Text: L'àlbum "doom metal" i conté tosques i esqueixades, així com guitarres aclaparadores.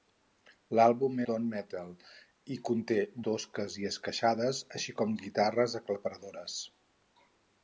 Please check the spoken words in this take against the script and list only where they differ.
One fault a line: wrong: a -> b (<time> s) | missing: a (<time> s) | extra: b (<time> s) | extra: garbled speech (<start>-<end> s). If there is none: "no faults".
no faults